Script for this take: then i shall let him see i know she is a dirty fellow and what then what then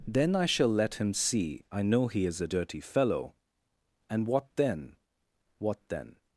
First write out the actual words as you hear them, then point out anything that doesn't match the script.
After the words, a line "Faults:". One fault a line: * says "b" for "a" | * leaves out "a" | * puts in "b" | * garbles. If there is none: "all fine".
then i shall let him see i know he is a dirty fellow and what then what then
Faults:
* says "he" for "she"